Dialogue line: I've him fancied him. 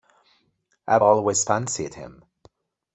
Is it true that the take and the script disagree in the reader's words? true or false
true